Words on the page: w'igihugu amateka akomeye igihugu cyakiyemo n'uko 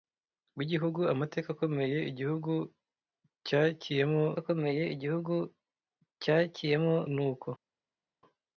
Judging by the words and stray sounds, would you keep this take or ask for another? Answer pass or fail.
fail